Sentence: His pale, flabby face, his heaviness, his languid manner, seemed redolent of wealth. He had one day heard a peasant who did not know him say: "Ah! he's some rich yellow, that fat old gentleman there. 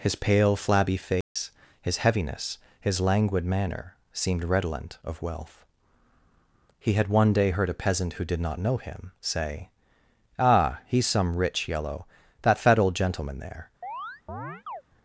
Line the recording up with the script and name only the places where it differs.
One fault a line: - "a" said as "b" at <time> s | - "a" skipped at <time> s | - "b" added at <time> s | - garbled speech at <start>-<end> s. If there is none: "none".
none